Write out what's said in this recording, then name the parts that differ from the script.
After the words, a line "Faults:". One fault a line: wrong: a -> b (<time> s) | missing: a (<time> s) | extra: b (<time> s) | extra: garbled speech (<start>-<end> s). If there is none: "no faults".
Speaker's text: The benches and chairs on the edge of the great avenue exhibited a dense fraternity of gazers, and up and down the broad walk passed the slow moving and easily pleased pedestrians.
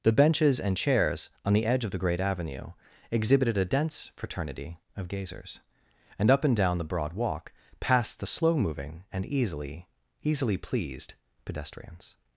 The benches and chairs on the edge of the great avenue exhibited a dense fraternity of gazers, and up and down the broad walk passed the slow moving and easily easily pleased pedestrians.
Faults:
extra: easily (10.2 s)